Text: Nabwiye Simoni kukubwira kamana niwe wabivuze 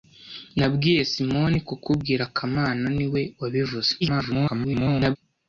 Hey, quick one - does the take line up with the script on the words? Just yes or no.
no